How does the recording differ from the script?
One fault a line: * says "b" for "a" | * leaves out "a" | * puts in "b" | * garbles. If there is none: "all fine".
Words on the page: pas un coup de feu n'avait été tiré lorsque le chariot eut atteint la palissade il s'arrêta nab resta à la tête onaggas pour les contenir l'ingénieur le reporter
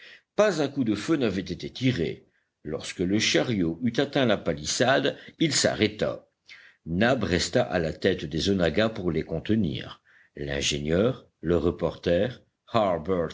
* puts in "des"